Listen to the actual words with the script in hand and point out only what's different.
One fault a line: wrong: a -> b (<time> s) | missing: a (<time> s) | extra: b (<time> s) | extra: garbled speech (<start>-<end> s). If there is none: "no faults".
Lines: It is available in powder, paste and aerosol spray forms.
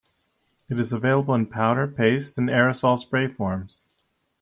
no faults